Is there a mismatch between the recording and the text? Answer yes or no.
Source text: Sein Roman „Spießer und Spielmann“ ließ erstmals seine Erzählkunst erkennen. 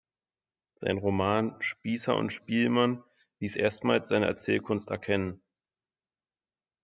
no